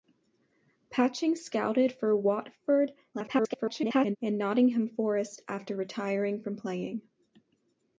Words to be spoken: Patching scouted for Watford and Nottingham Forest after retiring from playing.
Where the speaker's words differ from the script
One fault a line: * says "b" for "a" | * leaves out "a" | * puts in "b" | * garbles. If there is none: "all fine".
* garbles